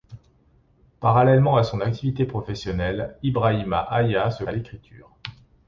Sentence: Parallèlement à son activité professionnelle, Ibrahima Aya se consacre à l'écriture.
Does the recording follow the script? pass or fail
fail